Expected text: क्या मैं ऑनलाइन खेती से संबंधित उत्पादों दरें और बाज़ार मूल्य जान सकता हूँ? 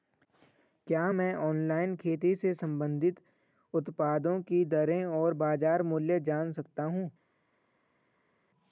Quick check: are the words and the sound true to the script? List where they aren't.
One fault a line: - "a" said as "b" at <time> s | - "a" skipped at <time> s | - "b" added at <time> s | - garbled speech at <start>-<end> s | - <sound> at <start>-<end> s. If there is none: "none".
- "की" added at 4.4 s